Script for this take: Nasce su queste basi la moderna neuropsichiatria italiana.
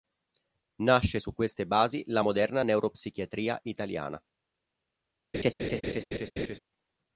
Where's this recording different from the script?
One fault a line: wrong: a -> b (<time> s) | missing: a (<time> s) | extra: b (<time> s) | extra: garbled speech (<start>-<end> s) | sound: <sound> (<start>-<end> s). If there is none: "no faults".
sound: laugh (5.3-6.6 s)